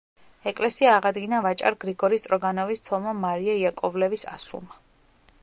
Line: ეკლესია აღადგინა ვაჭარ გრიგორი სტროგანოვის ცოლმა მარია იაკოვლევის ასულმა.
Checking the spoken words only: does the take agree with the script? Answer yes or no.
yes